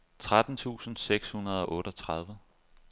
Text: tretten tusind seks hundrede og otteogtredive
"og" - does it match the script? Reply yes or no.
yes